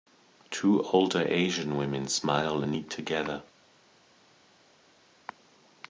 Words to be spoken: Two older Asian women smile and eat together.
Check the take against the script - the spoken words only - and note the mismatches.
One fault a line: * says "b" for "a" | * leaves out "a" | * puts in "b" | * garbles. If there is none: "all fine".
all fine